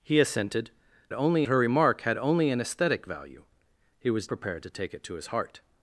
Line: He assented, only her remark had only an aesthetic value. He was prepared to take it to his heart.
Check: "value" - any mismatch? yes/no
no